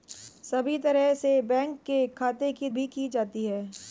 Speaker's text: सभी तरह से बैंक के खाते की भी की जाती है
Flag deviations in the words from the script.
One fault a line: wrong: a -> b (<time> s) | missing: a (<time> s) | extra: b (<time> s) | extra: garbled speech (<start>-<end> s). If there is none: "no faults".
no faults